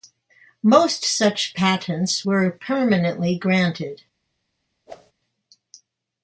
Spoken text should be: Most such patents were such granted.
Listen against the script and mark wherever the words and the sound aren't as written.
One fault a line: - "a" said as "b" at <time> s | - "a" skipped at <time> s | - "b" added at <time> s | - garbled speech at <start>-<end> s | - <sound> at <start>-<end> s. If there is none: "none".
- "such" said as "permanently" at 2.5 s
- whoosh at 4.9-5.1 s